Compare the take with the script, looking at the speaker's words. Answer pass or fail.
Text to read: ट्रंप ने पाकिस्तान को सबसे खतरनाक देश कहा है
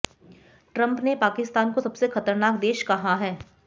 pass